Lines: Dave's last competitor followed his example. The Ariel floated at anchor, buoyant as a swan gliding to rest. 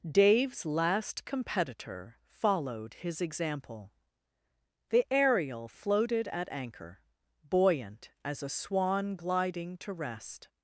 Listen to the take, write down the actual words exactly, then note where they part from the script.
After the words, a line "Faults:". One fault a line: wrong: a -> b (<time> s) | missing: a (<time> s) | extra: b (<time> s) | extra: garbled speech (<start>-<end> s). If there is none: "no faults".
Dave's last competitor followed his example. The Ariel floated at anchor, buoyant as a swan gliding to rest.
Faults:
no faults